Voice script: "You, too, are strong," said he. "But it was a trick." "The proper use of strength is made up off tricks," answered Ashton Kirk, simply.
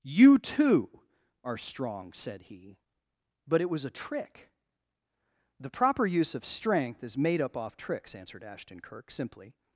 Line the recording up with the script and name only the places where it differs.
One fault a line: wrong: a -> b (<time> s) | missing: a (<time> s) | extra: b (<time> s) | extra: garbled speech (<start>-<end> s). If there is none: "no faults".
no faults